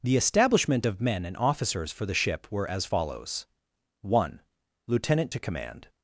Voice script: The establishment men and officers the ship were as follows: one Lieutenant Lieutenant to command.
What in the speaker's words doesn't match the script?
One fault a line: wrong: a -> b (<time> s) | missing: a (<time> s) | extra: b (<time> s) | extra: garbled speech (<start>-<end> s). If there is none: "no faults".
extra: of (0.9 s)
extra: for (1.9 s)
missing: Lieutenant (5.3 s)